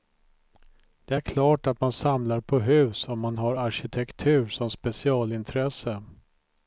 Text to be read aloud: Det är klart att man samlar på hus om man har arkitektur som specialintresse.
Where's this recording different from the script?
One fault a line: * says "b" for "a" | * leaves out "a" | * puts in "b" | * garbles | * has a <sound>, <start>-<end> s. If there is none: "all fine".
all fine